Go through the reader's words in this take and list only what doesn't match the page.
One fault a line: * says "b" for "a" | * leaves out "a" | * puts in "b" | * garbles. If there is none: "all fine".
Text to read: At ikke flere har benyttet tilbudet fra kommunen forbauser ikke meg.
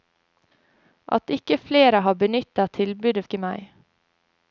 * leaves out "fra kommunen forbauser"